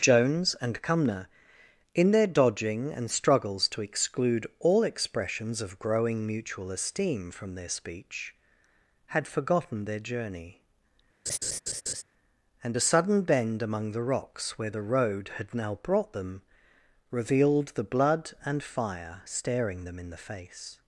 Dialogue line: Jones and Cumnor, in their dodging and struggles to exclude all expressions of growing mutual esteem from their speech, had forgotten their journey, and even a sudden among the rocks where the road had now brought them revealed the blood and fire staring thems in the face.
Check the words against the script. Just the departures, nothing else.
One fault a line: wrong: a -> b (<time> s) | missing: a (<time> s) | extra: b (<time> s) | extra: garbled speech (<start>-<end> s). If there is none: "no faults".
missing: even (12.7 s)
extra: bend (13.2 s)
wrong: thems -> them (19.8 s)